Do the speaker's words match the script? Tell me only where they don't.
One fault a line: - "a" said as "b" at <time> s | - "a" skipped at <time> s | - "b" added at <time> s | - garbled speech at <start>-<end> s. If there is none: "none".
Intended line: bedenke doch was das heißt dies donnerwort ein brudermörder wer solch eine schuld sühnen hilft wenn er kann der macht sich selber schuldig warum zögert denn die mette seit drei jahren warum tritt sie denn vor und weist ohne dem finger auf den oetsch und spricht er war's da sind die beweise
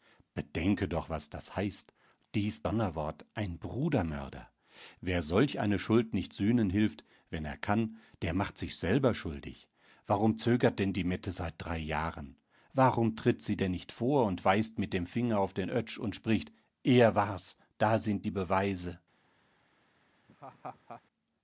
- "nicht" added at 6.1 s
- "nicht" added at 13.7 s
- "ohne" said as "mit" at 14.8 s